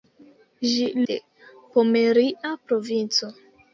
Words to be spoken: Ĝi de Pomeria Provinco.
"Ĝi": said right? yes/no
yes